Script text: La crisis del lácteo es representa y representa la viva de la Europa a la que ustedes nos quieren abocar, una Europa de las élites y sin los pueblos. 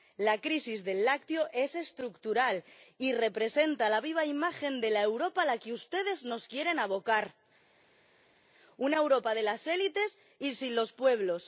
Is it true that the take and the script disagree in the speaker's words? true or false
true